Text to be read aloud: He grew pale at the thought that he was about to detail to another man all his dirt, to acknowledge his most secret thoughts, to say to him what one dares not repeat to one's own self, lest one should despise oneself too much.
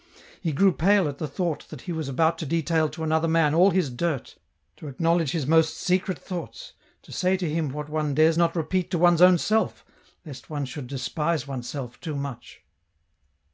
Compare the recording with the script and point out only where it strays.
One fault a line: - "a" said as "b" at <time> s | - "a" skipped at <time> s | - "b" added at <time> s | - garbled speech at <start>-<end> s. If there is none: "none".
none